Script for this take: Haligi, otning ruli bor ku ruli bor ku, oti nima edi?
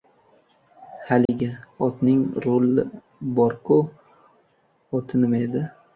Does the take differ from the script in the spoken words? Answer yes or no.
yes